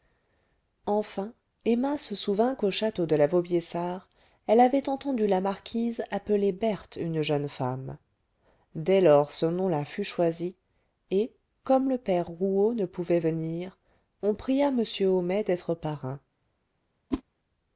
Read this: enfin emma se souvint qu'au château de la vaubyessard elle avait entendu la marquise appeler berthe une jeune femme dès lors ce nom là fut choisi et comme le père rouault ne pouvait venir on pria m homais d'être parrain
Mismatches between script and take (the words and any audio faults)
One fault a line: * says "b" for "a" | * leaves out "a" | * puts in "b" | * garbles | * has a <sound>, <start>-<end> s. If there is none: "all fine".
* has a whoosh, 17.1-17.2 s